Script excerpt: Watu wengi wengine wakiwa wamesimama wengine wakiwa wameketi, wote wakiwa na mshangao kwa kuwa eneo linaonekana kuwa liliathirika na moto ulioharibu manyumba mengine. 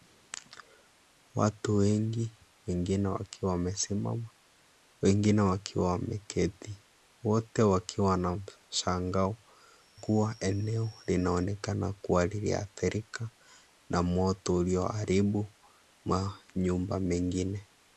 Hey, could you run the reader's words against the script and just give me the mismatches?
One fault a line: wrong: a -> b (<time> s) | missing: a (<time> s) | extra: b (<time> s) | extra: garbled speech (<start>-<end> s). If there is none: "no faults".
missing: kwa (9.4 s)